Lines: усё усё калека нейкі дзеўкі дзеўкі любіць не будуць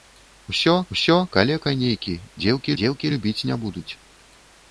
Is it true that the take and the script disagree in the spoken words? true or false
false